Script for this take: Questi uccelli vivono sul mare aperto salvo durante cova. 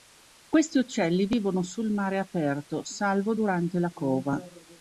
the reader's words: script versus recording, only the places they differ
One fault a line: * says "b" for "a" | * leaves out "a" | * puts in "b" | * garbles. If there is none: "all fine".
* puts in "la"